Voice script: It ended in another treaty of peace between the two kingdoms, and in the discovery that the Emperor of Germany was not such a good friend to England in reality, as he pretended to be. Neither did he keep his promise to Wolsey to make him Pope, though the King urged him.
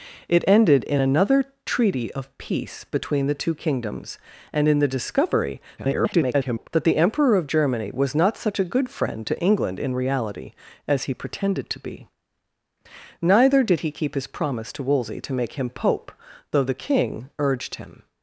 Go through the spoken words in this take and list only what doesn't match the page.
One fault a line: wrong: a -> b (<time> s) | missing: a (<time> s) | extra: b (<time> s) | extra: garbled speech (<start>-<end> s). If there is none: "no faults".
extra: garbled speech (5.8-6.7 s)